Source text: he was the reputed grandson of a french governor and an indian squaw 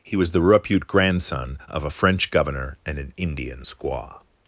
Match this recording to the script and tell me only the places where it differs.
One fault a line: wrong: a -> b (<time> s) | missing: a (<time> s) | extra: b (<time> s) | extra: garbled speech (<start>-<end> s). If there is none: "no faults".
wrong: reputed -> repute (0.4 s)